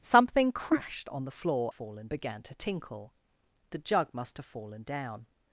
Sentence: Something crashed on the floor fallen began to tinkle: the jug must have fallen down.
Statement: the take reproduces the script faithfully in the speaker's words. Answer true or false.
true